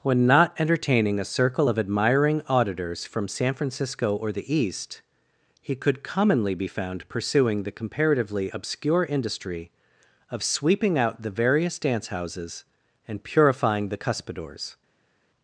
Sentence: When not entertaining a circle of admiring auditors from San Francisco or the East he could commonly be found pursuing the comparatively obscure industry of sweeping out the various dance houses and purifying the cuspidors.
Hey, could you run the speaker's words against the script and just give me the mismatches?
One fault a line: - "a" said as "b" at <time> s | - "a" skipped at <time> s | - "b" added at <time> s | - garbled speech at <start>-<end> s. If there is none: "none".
none